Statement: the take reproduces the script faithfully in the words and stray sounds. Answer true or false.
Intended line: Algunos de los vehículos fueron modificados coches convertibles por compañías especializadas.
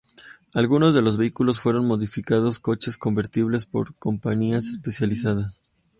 true